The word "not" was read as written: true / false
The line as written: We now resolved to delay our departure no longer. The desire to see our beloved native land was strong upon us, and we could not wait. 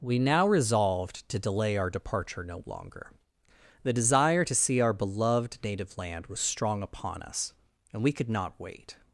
true